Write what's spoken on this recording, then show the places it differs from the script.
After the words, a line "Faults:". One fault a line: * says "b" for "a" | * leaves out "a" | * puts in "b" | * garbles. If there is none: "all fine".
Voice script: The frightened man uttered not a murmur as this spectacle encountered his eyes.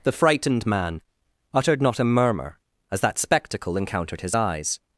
The frightened man uttered not a murmur as that spectacle encountered his eyes.
Faults:
* says "that" for "this"